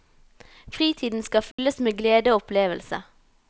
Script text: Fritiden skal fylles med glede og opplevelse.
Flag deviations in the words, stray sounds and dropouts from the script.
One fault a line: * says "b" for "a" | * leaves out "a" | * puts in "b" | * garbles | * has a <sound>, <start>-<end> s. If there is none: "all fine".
* has a dropout, 1.5-1.6 s